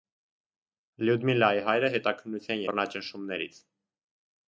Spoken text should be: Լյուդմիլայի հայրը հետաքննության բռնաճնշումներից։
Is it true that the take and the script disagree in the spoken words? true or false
false